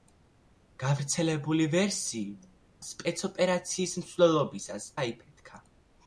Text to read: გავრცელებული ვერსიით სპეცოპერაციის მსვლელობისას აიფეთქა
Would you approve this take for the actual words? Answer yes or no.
yes